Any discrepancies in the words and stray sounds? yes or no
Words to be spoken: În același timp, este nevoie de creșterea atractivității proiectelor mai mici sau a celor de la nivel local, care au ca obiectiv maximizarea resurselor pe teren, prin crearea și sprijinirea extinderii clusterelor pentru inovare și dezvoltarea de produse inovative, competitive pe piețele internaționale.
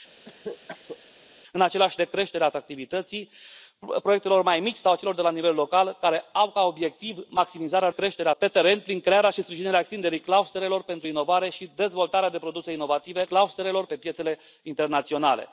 yes